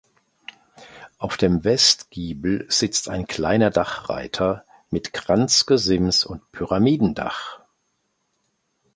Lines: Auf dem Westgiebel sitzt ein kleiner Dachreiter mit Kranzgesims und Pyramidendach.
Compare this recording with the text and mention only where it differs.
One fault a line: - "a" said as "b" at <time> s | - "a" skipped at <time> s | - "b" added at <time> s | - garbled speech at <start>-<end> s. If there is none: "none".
none